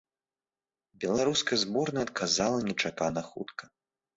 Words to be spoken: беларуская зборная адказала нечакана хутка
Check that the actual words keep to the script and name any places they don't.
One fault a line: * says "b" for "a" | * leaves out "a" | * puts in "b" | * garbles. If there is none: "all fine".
all fine